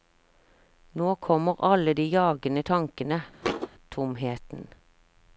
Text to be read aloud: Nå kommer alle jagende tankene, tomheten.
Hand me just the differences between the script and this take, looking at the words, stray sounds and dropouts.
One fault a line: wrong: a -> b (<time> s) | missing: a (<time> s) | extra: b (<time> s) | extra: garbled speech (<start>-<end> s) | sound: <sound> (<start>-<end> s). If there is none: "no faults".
extra: de (1.9 s)
sound: thud (3.4-3.7 s)